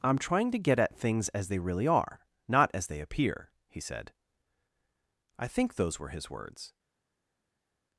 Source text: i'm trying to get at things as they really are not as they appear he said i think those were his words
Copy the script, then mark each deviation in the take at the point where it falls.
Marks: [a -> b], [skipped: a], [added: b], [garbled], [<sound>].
i'm trying to get at things as they really are not as they appear he said i think those were his words